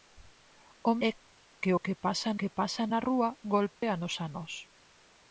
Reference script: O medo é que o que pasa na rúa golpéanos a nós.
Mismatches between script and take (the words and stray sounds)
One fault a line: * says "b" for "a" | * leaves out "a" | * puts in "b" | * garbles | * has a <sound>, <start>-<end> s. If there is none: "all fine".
* leaves out "medo"
* puts in "que pasa"
* has a dropout, 3.7-3.8 s